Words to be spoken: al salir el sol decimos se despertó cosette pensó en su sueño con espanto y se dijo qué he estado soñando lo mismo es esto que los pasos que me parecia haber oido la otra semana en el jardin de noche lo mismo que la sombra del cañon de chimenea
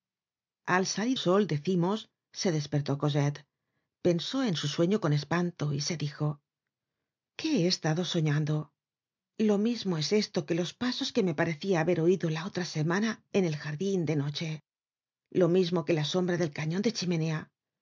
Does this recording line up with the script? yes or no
no